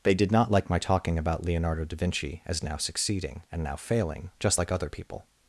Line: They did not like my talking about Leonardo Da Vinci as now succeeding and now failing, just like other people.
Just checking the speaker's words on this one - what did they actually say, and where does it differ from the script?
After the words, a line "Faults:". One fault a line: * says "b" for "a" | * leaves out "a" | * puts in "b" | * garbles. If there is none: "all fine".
They did not like my talking about Leonardo Da Vinci as now succeeding and now failing, just like other people.
Faults:
all fine